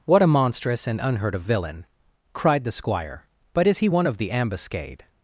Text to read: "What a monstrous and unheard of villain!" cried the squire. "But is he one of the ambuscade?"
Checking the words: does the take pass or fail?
pass